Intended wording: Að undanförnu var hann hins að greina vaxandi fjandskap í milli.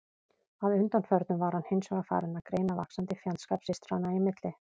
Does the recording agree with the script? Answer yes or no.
no